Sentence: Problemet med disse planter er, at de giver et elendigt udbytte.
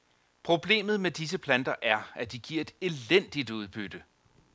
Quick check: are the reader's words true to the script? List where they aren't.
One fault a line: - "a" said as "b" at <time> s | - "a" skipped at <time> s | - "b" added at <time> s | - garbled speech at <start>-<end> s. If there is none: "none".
none